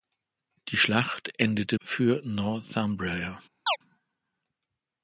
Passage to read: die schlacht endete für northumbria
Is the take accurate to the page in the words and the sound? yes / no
no